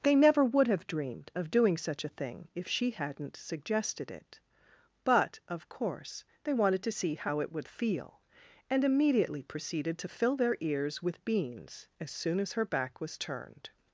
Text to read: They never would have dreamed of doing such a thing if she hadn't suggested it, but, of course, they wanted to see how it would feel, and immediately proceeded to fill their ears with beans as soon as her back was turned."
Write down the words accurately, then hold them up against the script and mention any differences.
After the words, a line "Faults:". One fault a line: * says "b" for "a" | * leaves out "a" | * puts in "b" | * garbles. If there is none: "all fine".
They never would have dreamed of doing such a thing if she hadn't suggested it, but, of course, they wanted to see how it would feel, and immediately proceeded to fill their ears with beans as soon as her back was turned."
Faults:
all fine